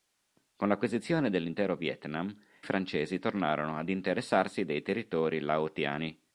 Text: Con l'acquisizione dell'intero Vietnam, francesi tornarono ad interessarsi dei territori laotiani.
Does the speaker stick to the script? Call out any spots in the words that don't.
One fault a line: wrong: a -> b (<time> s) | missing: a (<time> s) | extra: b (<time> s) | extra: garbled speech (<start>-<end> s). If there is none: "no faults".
no faults